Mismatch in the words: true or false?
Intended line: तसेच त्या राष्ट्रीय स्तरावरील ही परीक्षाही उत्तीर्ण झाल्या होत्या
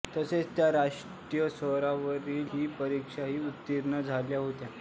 false